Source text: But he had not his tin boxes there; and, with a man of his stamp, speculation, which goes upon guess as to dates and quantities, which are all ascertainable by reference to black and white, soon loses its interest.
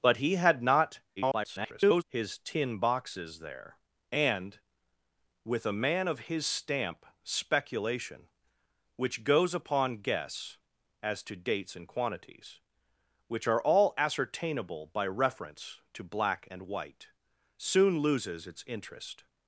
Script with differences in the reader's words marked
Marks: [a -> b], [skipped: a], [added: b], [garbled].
But he had not [garbled] his tin boxes there; and, with a man of his stamp, speculation, which goes upon guess as to dates and quantities, which are all ascertainable by reference to black and white, soon loses its interest.